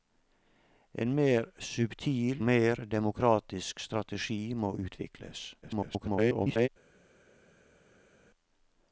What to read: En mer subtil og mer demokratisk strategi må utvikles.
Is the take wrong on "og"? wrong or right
wrong